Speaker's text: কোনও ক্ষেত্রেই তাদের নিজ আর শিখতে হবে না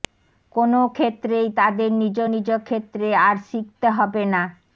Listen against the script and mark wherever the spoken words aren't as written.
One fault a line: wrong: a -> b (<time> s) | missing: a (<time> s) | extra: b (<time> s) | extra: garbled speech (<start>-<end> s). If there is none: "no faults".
extra: নিজ ক্ষেত্রে (2.3 s)